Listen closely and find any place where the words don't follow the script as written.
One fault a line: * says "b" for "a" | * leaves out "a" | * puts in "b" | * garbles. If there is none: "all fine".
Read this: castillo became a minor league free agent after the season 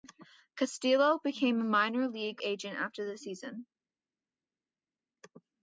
* leaves out "free"